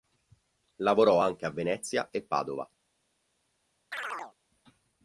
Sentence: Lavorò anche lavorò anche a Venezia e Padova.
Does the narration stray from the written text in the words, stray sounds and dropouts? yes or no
yes